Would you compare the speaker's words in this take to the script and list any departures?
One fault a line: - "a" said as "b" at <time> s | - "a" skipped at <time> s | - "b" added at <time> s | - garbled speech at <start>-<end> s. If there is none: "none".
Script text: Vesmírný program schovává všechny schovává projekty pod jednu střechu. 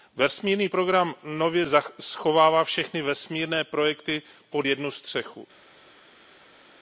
- "nově" added at 1.2 s
- "schovává" said as "vesmírné" at 3.0 s